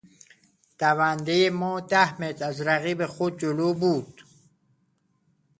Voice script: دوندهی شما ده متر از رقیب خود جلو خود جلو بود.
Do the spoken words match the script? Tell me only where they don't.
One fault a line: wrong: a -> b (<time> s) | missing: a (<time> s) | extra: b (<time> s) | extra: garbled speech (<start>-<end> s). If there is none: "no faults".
wrong: شما -> ما (1.5 s)
missing: خود جلو (3.7 s)